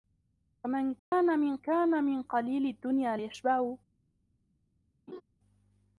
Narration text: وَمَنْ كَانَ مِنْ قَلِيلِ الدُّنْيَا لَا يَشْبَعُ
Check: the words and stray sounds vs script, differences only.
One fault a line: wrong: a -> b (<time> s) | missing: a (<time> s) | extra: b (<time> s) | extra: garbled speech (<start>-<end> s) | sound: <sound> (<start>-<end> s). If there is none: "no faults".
sound: dropout (1.0-1.1 s)
extra: كَانَ مِنْ (1.6 s)
missing: لَا (3.2 s)
sound: laugh (5.1-5.2 s)